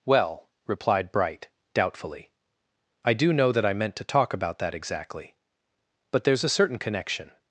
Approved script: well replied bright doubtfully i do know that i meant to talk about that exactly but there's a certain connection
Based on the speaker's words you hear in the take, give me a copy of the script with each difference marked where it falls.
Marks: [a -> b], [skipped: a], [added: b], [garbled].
well replied bright doubtfully i do know that i meant to talk about that exactly but there's a certain connection